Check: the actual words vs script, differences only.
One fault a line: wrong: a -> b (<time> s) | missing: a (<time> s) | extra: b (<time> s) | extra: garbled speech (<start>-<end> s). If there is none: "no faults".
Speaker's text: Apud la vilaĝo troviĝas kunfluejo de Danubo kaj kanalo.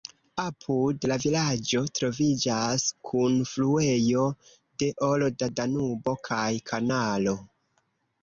extra: olda (5.1 s)